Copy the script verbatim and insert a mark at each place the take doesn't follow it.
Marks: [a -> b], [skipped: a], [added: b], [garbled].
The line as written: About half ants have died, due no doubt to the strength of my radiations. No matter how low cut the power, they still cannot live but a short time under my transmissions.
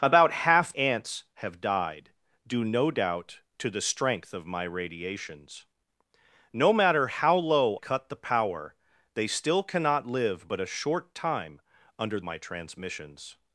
About half ants have died, due no doubt to the strength of my radiations. No matter how low cut the power, they still cannot live but a short time under my transmissions.